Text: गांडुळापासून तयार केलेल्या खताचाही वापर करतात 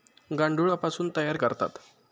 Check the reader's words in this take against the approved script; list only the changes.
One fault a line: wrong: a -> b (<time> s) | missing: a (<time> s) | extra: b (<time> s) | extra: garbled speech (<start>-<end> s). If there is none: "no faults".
missing: केलेल्या खताचाही वापर (1.4 s)